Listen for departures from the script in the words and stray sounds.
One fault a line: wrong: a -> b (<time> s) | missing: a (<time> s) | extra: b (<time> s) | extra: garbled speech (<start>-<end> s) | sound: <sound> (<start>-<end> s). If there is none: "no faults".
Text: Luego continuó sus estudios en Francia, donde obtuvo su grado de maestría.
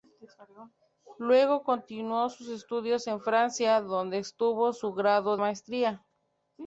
missing: de (5.4 s)